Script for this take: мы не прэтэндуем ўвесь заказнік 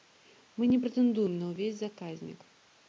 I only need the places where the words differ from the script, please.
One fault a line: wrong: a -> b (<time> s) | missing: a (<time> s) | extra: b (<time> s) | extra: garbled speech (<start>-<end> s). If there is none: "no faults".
extra: на (1.4 s)